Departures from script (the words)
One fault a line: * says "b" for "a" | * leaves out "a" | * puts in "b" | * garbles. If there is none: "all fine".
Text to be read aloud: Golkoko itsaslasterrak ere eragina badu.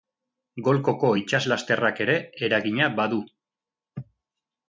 all fine